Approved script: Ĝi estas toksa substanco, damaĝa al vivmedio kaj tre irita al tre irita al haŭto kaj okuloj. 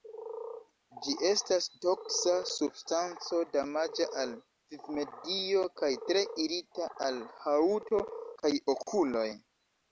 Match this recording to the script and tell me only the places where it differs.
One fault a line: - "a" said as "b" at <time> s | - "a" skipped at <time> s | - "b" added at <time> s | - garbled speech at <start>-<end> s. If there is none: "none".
- "tre irita al" skipped at 7.2 s